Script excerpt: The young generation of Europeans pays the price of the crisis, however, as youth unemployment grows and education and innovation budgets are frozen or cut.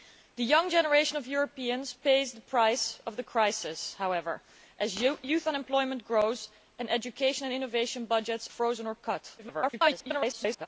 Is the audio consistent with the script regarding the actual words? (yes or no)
no